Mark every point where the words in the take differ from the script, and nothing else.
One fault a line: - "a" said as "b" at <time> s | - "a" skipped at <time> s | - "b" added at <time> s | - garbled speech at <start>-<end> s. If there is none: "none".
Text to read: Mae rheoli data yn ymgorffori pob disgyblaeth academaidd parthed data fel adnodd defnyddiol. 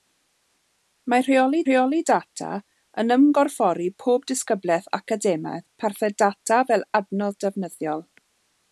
- "rheoli" added at 1.6 s